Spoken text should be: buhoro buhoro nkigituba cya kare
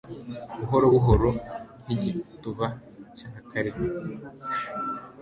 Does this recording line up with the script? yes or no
yes